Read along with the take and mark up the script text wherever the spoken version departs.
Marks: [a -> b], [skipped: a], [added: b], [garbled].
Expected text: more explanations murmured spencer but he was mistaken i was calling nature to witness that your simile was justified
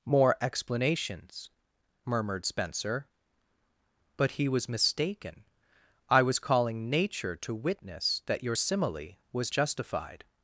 more explanations murmured spencer but he was mistaken i was calling nature to witness that your simile was justified